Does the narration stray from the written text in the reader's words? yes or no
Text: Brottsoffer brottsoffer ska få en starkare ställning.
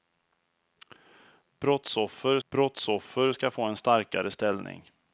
no